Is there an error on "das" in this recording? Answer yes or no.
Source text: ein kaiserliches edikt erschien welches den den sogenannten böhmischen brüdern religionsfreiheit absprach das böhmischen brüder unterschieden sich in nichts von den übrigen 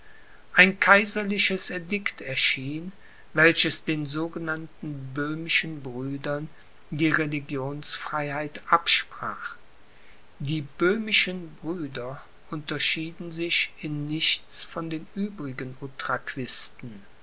yes